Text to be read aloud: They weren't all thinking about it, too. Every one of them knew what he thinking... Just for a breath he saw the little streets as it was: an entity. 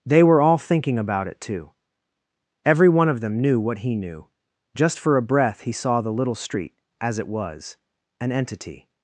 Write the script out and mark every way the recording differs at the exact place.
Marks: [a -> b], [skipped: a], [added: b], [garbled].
They [weren't -> were] all thinking about it, too. Every one of them knew what he [thinking... -> knew] Just for a breath he saw the little [streets -> street] as it was: an entity.